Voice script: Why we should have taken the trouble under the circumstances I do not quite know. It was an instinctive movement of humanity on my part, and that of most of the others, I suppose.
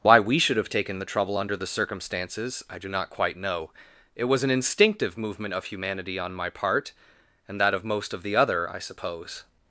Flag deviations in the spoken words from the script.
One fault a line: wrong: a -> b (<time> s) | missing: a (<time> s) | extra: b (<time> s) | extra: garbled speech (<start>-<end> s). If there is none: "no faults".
wrong: others -> other (8.3 s)